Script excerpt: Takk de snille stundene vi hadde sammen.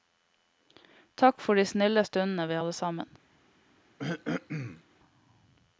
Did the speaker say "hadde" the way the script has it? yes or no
yes